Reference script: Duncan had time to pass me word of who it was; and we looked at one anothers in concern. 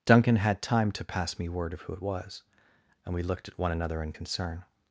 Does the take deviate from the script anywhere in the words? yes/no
yes